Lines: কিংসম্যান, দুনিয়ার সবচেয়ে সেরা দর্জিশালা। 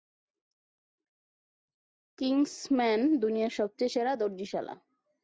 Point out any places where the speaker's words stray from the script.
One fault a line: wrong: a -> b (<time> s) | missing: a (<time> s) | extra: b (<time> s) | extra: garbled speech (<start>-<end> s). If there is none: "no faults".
no faults